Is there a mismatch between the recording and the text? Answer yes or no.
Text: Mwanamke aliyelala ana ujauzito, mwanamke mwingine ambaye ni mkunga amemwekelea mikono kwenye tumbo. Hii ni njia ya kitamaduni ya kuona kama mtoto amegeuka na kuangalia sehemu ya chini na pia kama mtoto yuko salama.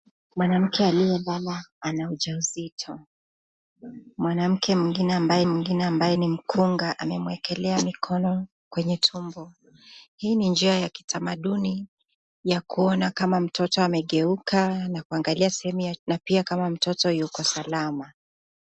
yes